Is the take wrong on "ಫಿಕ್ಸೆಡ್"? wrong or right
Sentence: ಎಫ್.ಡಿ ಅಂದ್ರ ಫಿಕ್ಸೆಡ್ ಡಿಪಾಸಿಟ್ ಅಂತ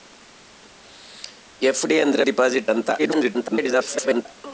wrong